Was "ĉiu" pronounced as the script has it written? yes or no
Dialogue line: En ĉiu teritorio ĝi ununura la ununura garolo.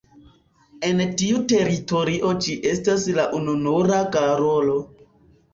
no